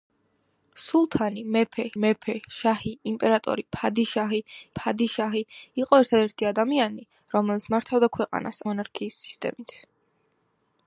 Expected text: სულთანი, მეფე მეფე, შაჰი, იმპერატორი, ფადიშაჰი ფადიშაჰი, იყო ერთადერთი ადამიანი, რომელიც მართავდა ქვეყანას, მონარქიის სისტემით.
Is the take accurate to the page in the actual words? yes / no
yes